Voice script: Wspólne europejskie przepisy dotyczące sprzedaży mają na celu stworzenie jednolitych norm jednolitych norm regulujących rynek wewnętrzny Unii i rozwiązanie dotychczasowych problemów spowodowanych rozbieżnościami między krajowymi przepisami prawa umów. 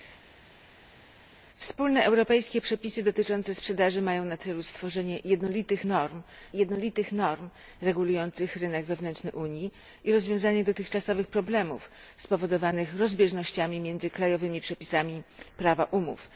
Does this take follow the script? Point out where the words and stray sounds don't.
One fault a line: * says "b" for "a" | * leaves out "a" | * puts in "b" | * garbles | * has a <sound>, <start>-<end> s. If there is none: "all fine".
all fine